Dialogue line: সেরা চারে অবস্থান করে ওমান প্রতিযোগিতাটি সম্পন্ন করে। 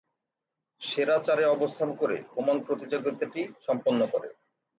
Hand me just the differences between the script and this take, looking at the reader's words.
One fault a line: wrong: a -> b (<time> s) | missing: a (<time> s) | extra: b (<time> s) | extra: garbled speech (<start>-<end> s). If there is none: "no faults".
no faults